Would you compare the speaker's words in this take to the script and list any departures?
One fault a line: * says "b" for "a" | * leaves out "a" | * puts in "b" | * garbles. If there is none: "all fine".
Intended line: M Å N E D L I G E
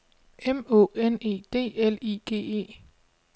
all fine